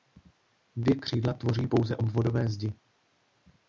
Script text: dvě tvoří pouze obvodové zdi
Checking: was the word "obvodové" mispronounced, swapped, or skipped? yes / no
no